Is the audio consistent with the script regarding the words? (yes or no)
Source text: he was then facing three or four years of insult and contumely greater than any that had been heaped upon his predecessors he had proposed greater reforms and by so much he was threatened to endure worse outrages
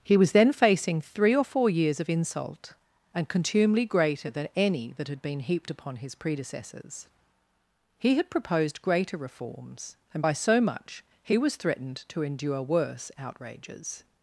yes